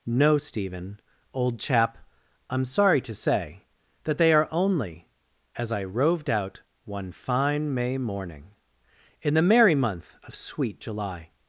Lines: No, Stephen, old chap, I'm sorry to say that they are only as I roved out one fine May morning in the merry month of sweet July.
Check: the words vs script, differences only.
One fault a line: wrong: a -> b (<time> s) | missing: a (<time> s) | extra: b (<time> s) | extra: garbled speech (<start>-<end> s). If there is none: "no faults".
no faults